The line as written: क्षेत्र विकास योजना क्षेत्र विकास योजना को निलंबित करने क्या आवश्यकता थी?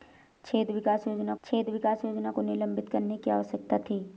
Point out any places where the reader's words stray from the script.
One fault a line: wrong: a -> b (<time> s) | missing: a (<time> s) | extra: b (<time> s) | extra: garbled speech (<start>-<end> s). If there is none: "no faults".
no faults